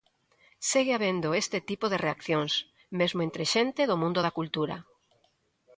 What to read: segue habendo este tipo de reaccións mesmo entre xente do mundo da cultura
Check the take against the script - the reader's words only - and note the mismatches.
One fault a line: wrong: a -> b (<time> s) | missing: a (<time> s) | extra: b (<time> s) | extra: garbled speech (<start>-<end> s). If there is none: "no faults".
no faults